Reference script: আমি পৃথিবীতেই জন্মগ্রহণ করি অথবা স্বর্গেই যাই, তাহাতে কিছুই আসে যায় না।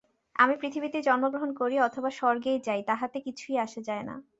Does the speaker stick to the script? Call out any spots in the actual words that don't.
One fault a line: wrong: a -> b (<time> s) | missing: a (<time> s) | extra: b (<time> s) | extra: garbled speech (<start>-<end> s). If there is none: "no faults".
no faults